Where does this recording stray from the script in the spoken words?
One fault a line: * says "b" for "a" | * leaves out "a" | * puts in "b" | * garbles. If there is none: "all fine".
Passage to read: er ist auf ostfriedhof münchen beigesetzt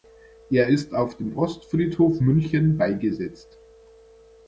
* puts in "dem"